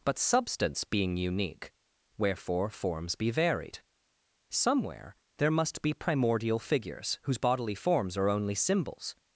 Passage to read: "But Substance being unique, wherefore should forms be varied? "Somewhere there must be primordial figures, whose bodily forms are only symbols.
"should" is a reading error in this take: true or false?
true